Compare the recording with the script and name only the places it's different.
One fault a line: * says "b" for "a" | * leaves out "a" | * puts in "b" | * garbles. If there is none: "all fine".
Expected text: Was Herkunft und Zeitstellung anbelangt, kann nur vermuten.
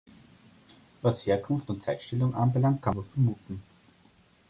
all fine